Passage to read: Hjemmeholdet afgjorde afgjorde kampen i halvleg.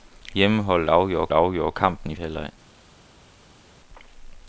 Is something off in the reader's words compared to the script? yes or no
no